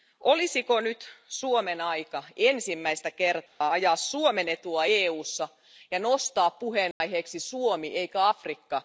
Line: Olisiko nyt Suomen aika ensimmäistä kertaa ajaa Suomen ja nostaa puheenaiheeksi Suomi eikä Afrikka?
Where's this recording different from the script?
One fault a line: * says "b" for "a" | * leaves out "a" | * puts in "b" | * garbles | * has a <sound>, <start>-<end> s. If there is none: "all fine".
* has a dropout, 3.5-3.6 s
* puts in "etua EUssa"
* has a dropout, 6.9-7.0 s